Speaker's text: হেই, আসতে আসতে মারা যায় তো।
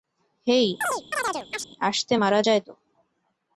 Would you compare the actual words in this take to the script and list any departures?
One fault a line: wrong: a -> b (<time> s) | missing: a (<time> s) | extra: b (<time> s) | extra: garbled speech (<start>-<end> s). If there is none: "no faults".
missing: আসতে (2.1 s)